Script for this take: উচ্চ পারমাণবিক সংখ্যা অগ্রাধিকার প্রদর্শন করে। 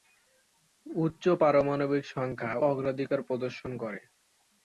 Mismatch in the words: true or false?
false